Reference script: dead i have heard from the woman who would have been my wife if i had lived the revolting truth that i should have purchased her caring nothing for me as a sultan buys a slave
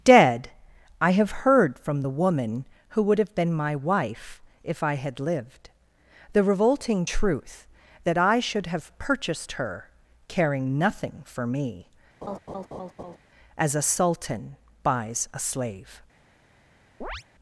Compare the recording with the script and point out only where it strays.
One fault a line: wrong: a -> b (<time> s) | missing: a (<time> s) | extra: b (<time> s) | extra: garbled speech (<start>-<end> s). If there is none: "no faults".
no faults